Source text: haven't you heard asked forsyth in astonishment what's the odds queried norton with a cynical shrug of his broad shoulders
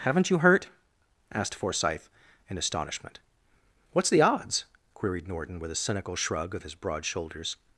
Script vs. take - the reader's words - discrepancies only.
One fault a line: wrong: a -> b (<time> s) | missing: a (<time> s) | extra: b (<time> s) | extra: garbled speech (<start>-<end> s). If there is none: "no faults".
wrong: heard -> hurt (0.4 s)